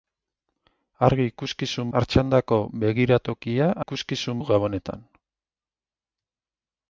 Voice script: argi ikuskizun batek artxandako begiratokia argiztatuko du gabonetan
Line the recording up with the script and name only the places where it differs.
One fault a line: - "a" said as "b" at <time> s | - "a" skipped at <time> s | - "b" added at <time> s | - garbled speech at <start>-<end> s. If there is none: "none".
- "batek" skipped at 1.9 s
- "argiztatuko" said as "ikuskizun" at 3.8 s